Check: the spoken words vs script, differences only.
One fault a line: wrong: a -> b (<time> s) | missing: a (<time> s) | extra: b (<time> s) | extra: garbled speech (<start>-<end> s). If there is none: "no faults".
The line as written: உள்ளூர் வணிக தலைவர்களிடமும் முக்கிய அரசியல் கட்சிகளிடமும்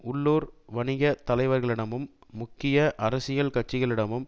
no faults